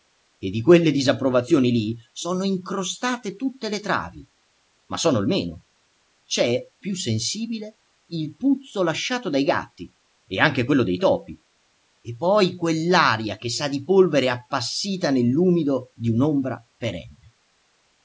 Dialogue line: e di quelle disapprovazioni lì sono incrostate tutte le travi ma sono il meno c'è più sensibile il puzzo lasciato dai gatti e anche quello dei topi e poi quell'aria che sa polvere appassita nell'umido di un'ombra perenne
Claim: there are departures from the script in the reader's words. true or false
true